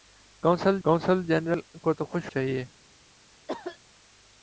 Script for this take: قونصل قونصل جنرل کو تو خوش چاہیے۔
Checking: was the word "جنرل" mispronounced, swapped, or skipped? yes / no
no